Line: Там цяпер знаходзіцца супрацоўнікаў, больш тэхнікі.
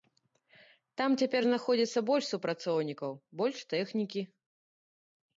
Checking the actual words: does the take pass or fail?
fail